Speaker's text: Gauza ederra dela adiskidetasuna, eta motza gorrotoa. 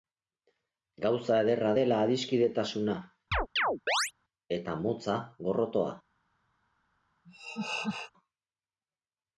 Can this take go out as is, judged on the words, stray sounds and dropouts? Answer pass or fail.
fail